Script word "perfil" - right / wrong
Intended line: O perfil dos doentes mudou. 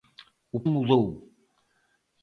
wrong